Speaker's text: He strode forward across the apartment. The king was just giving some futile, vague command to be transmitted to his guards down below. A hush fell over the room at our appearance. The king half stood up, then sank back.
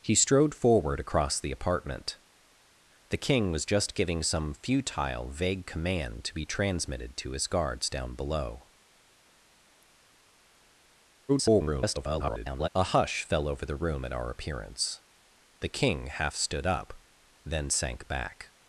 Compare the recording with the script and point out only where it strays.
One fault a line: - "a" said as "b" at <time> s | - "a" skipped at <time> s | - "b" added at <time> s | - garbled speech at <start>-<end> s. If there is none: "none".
- garbled speech at 11.3-12.7 s